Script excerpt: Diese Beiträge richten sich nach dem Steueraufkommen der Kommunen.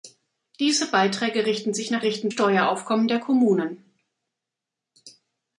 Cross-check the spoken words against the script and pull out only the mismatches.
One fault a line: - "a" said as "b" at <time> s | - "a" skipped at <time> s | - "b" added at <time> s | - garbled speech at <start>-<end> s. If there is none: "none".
- "dem" said as "richten" at 2.0 s